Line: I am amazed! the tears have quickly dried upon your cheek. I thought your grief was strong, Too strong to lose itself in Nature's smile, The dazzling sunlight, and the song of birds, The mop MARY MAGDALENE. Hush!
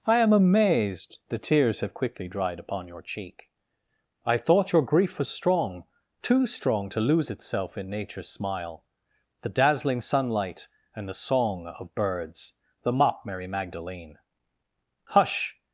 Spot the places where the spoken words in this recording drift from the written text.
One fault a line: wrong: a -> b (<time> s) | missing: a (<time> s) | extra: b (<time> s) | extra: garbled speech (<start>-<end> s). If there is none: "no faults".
no faults